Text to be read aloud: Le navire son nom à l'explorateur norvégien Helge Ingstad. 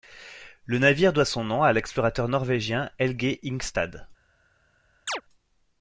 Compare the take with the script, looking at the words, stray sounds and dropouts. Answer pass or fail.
fail